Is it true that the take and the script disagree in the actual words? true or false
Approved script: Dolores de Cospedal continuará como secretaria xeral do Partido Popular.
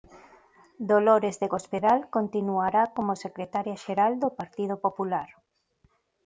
false